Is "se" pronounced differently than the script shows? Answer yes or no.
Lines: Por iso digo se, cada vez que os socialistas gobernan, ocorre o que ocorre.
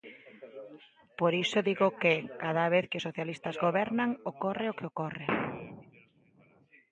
yes